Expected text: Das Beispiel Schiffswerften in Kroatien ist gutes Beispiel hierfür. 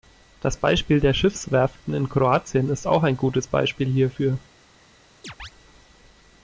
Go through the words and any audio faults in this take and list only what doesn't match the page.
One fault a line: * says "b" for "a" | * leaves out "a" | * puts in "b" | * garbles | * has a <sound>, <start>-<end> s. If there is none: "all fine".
* puts in "der"
* puts in "auch ein"
* has a chirp, 5.2-5.5 s